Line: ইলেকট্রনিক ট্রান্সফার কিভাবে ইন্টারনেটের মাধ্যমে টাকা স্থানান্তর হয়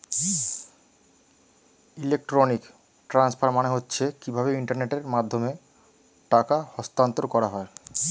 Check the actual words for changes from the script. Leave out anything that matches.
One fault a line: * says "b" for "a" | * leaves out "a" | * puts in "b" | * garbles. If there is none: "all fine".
* puts in "মানে হচ্ছে"
* puts in "করা"